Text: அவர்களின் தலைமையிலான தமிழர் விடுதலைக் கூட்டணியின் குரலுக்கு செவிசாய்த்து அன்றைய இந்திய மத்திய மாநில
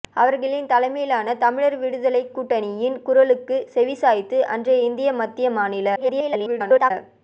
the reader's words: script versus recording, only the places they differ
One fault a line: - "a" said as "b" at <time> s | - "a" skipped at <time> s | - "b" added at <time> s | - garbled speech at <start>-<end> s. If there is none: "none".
- garbled speech at 5.9-6.9 s